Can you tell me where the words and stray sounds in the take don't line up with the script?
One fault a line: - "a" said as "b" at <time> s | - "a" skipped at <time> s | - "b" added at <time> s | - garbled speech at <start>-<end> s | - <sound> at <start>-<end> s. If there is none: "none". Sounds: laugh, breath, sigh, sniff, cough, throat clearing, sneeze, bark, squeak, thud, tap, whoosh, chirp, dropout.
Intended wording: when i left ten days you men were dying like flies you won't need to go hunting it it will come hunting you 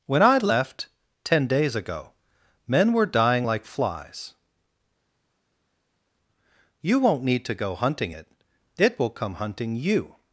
- "you" said as "ago" at 1.8 s